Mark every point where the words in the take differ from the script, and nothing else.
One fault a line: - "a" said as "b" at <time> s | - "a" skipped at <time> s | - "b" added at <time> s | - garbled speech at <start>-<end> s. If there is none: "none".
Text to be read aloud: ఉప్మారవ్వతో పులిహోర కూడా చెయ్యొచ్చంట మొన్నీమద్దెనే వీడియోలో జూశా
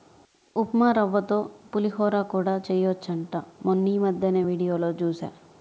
none